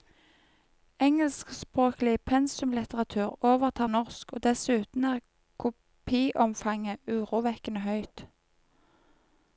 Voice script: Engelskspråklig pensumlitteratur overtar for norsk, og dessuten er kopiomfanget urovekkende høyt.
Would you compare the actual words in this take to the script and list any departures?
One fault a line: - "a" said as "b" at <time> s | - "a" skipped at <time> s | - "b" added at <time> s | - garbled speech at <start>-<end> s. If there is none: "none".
- "for" skipped at 3.9 s